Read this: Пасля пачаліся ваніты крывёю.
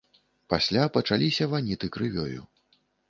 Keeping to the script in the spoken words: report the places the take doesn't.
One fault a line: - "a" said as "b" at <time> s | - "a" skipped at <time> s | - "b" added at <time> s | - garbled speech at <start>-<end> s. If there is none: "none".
none